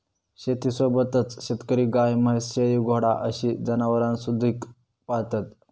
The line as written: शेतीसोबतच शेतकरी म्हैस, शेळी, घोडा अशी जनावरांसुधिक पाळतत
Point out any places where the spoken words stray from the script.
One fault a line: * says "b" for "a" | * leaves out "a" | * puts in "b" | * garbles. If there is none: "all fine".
* puts in "गाय"